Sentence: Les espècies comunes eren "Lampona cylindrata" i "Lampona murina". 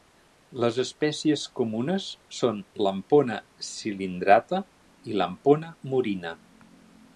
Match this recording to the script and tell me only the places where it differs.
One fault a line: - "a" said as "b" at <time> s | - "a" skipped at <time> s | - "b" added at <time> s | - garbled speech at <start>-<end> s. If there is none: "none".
- "eren" said as "són" at 2.4 s